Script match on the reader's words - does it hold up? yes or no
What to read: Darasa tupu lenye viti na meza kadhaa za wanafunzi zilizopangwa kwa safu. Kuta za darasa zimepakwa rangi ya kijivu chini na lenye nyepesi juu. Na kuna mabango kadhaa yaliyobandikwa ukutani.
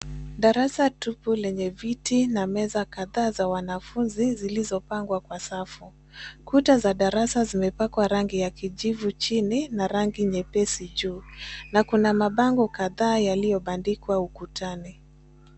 no